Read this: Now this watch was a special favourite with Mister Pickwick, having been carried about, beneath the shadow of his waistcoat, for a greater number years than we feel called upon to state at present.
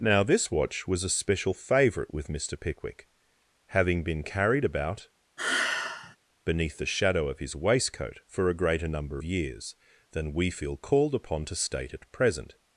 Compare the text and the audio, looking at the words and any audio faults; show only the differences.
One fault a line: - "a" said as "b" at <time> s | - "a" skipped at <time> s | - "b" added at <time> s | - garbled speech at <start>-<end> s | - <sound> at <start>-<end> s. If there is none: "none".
- sigh at 5.4-6.2 s